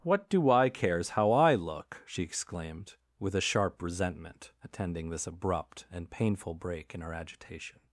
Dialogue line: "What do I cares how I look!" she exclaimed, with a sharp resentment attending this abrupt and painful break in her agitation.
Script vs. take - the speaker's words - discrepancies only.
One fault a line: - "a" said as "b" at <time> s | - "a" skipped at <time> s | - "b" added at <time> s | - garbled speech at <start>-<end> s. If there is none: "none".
none